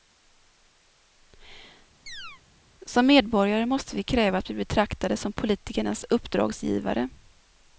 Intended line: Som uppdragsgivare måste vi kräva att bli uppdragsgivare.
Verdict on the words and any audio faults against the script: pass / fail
fail